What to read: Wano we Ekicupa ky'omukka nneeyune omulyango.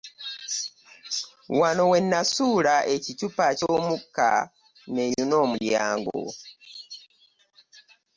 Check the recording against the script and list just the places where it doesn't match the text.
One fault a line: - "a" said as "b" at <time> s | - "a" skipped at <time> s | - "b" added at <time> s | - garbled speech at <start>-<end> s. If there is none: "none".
- "Nasuula" added at 2.1 s